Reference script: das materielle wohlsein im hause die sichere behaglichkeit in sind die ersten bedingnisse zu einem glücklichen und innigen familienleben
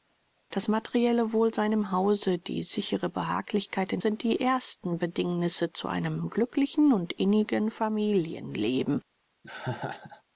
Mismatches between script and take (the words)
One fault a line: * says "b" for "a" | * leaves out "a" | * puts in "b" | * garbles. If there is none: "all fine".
all fine